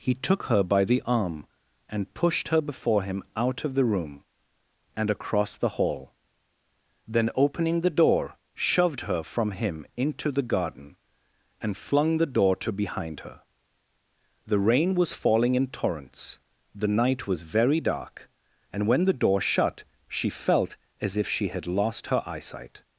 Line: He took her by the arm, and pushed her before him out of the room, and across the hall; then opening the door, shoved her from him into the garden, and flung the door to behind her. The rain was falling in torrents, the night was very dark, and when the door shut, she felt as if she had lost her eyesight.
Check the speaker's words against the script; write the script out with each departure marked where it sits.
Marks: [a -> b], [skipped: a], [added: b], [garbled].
He took her by the arm, and pushed her before him out of the room, and across the hall; then opening the door, shoved her from him into the garden, and flung the door to behind her. The rain was falling in torrents, the night was very dark, and when the door shut, she felt as if she had lost her eyesight.